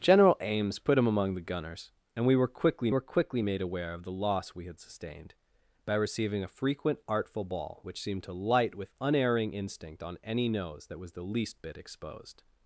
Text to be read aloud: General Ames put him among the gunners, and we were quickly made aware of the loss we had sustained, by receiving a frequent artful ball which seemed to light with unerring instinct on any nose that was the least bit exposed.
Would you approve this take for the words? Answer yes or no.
no